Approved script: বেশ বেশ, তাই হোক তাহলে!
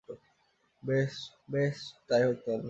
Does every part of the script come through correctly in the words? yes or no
yes